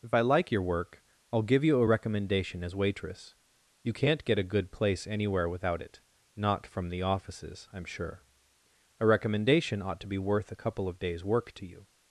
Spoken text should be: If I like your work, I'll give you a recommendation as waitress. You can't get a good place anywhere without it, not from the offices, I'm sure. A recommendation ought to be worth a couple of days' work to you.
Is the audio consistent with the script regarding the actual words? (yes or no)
yes